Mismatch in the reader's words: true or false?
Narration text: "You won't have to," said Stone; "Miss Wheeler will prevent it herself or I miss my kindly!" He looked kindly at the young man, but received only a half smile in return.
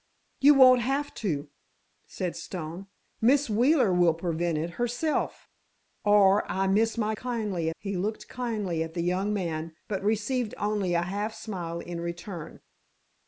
false